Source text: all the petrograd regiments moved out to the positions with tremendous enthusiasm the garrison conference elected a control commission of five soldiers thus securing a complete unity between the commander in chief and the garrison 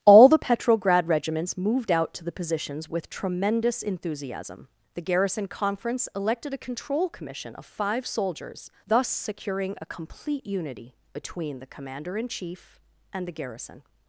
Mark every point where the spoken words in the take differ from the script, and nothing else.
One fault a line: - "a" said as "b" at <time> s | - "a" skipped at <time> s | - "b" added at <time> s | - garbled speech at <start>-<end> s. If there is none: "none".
none